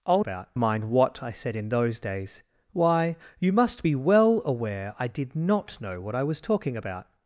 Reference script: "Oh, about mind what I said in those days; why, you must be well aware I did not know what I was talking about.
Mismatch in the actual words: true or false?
false